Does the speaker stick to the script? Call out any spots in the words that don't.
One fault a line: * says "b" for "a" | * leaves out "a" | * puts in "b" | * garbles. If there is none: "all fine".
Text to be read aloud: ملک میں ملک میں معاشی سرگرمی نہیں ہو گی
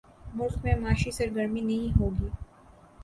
* leaves out "ملک میں"